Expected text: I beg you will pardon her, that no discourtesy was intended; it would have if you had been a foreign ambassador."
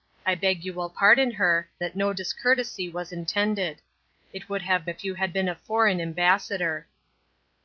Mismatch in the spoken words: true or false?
false